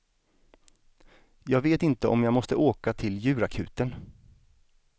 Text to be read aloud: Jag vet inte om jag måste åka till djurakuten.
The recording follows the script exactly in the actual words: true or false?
true